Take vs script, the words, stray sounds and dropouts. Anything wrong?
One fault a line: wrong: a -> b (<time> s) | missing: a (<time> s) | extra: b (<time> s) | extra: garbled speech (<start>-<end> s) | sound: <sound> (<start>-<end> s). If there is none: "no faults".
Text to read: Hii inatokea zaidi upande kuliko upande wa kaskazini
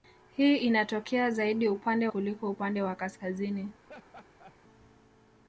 sound: laugh (3.8-4.6 s)